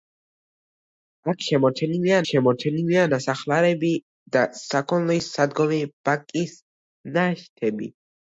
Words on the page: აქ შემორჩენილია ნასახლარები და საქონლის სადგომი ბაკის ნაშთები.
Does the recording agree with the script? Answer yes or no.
no